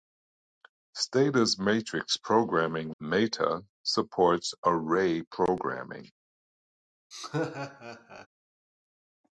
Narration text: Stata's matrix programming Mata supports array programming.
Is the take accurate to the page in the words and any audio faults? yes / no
no